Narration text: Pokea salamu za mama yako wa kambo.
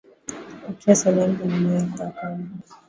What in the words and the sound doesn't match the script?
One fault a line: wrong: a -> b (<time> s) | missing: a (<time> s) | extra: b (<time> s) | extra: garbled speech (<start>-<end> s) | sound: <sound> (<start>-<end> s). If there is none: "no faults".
no faults